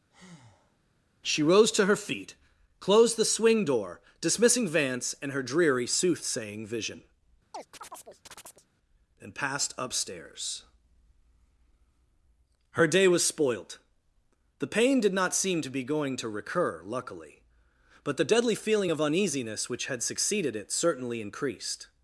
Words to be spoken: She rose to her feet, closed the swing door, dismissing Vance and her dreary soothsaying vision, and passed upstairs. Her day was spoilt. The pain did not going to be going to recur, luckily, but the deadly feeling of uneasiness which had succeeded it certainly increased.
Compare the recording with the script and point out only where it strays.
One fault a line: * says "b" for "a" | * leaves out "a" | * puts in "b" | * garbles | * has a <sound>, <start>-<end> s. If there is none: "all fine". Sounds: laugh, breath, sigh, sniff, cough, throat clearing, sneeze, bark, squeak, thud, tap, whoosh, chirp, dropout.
* has a breath, 0.1-0.8 s
* has a chirp, 7.5-8.7 s
* says "seem" for "going"